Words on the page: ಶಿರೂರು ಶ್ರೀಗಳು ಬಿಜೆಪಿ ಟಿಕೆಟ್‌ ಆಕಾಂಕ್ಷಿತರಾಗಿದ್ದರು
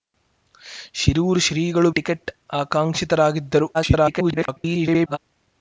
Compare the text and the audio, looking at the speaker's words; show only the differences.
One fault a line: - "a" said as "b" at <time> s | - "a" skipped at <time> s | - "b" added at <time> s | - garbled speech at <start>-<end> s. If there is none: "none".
- "ಬಿಜೆಪಿ" skipped at 1.9 s
- garbled speech at 3.7-5.2 s